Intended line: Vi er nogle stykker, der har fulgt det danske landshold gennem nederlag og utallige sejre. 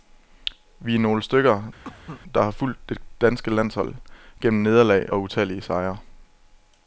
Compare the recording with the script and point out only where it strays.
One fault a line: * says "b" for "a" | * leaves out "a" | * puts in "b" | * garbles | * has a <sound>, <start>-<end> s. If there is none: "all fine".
* has a cough, 1.8-2.2 s